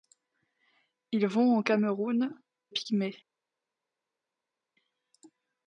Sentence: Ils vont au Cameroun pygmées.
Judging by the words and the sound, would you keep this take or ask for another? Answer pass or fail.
pass